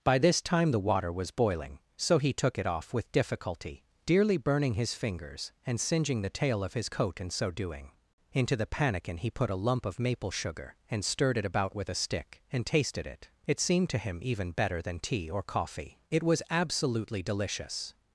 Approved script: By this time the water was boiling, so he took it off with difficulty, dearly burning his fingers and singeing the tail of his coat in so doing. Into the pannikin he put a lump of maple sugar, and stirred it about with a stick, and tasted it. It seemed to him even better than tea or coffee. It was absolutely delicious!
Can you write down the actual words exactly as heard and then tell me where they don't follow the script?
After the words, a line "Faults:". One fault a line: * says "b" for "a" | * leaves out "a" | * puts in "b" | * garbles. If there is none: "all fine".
By this time the water was boiling, so he took it off with difficulty, dearly burning his fingers and singeing the tail of his coat in so doing. Into the pannikin he put a lump of maple sugar, and stirred it about with a stick, and tasted it. It seemed to him even better than tea or coffee. It was absolutely delicious!
Faults:
all fine